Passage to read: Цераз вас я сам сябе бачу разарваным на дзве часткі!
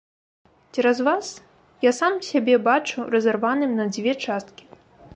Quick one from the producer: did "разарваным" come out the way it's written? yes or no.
yes